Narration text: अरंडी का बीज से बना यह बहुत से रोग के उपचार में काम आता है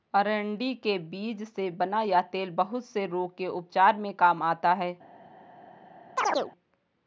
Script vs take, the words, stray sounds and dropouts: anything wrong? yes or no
yes